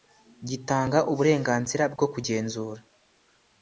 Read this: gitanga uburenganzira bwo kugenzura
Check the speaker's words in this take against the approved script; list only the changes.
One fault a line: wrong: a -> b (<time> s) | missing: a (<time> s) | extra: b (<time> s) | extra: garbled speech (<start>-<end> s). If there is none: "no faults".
no faults